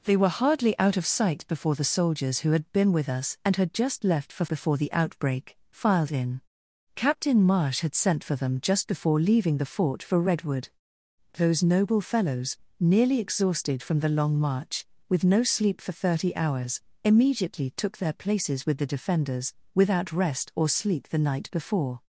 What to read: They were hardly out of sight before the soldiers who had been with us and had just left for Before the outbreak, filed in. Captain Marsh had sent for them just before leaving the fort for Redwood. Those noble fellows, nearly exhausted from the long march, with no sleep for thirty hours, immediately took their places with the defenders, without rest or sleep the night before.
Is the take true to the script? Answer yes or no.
yes